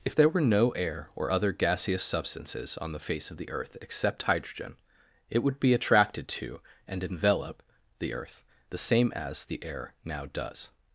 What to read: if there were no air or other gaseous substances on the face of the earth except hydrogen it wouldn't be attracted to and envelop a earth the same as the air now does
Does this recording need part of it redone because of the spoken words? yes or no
yes